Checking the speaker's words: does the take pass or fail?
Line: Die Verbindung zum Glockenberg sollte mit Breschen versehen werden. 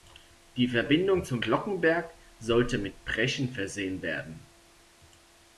pass